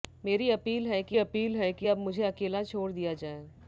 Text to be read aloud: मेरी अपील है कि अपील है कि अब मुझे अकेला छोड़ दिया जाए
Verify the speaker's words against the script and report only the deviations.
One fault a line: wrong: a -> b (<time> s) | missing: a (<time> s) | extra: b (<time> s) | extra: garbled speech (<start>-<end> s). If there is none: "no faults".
no faults